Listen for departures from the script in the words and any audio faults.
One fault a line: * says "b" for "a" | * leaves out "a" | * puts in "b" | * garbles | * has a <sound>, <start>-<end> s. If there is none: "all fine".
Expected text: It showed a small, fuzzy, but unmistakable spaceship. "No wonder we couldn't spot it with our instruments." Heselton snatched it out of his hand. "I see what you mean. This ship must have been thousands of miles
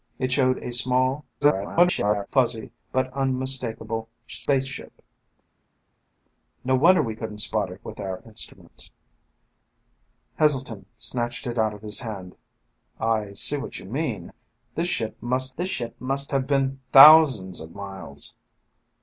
* garbles
* puts in "this ship must"